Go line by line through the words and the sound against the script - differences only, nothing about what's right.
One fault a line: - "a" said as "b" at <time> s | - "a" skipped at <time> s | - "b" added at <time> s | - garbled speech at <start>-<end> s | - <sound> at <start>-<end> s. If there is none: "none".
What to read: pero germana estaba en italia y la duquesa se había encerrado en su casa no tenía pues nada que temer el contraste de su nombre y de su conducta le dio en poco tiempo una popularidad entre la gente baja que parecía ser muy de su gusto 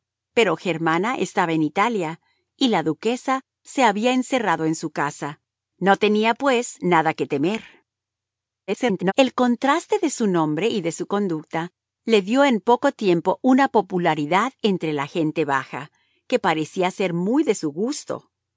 - garbled speech at 8.7-9.1 s